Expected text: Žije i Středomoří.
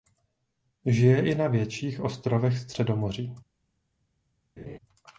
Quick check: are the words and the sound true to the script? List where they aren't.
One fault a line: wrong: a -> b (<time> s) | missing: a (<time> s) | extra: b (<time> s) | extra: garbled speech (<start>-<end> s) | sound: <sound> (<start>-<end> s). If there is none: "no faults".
extra: na větších ostrovech (1.4 s)
sound: laugh (4.6-4.8 s)